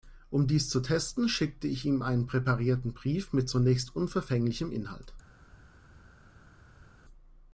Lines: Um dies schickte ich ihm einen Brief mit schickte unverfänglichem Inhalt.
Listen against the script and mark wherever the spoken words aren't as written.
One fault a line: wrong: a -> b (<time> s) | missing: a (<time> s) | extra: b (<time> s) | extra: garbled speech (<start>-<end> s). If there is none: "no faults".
extra: zu testen (0.7 s)
extra: präparierten (2.2 s)
wrong: schickte -> zunächst (3.5 s)